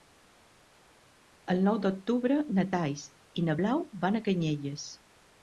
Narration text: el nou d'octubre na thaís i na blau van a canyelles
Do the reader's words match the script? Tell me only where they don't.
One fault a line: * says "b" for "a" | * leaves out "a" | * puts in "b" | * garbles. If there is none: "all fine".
all fine